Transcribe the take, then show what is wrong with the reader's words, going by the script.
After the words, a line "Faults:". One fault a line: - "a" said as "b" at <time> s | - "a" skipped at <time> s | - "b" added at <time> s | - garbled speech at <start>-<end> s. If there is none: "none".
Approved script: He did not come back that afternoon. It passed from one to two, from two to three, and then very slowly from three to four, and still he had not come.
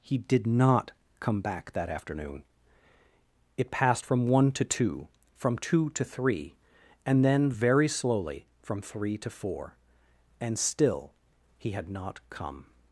He did not come back that afternoon. It passed from one to two, from two to three, and then very slowly from three to four, and still he had not come.
Faults:
none